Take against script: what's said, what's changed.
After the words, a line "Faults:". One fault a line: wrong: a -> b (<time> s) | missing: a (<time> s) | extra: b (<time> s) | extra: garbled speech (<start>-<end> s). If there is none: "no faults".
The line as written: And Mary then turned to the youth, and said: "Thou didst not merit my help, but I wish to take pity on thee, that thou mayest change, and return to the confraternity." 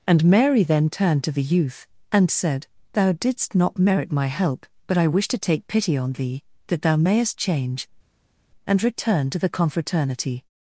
And Mary then turned to the youth, and said: "Thou didst not merit my help, but I wish to take pity on thee, that thou mayest change, and return to the confraternity."
Faults:
no faults